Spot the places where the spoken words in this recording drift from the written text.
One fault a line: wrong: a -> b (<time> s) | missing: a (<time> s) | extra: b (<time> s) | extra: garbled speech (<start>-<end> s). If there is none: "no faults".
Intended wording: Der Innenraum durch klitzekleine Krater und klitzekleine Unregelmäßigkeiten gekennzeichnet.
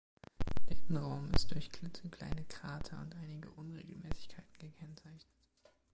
extra: ist (1.3 s)
wrong: klitzekleine -> einige (3.2 s)